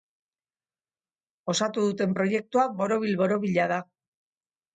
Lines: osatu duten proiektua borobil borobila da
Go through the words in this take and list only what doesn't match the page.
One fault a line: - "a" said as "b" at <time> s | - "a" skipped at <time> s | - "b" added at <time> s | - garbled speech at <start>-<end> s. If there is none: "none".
none